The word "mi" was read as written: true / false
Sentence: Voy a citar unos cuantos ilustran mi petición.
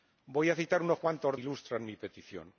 true